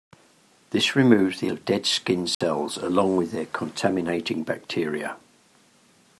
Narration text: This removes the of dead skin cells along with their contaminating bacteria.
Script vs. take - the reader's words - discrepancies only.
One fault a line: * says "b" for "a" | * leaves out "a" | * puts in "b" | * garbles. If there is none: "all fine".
all fine